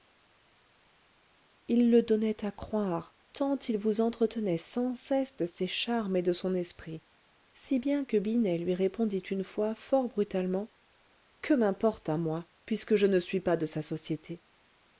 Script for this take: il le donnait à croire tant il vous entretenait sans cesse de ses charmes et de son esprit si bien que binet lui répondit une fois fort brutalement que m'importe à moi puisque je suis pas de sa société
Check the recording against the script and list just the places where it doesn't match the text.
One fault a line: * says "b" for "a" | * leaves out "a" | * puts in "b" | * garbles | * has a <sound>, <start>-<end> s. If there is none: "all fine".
* puts in "ne"